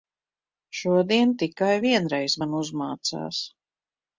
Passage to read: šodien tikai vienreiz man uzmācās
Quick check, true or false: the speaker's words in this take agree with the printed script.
true